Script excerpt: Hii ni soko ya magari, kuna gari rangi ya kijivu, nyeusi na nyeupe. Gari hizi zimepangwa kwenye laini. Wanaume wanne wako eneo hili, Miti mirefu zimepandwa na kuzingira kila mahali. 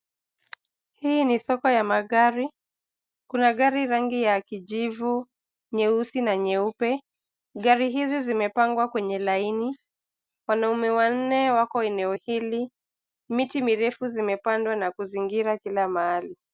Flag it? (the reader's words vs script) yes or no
no